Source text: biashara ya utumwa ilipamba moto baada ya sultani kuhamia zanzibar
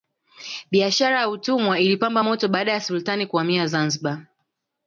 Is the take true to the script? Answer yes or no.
yes